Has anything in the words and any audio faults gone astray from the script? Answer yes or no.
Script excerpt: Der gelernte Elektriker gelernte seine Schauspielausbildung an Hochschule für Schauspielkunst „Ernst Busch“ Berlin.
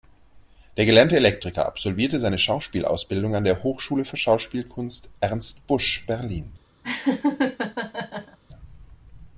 yes